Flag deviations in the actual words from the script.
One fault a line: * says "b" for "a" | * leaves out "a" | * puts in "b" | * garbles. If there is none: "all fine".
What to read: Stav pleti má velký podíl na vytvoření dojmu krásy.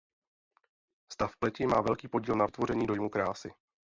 all fine